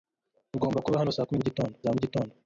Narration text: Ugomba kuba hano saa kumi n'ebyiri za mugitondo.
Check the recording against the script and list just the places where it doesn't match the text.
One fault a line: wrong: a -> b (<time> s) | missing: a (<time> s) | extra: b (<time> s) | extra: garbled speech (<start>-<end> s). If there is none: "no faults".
wrong: n'ebyiri -> mugitondo (1.4 s)